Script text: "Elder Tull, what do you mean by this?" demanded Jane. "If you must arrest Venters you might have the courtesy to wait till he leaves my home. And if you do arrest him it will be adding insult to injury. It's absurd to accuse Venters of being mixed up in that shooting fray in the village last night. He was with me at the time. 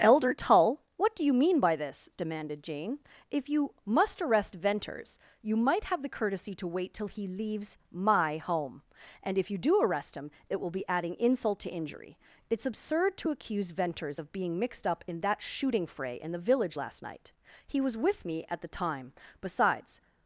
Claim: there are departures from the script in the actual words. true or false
true